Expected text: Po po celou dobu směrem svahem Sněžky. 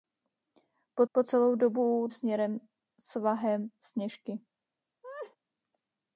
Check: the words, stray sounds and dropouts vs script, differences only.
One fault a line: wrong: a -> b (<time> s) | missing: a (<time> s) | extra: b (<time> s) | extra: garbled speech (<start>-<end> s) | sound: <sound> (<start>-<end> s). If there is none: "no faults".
sound: laugh (5.0-5.4 s)